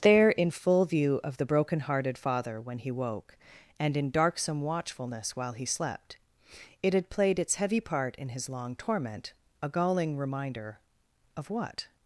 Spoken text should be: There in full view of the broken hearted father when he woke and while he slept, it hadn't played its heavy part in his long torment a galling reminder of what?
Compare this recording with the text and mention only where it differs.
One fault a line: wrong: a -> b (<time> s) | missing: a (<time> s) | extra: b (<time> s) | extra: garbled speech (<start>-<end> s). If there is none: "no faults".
extra: in darksome watchfulness (4.0 s)
wrong: hadn't -> had (6.9 s)